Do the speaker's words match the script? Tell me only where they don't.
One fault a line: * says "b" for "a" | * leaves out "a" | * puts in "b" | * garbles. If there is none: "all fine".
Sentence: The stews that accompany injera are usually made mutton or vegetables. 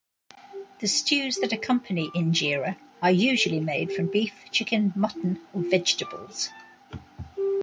* puts in "from beef chicken"